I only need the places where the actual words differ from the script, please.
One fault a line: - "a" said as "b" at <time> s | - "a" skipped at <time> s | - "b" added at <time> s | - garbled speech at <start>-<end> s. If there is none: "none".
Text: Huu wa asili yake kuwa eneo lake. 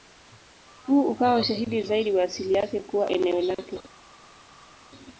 - "ukawa ushahidi zaidi" added at 1.1 s